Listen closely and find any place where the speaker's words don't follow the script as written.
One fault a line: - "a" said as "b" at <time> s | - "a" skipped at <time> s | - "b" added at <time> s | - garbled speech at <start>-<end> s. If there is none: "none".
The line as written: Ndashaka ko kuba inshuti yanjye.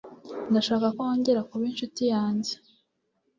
- "wongera" added at 1.0 s